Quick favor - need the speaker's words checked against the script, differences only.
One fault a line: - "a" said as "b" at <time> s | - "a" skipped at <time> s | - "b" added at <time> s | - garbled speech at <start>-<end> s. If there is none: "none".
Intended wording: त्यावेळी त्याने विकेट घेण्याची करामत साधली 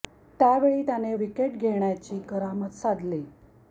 none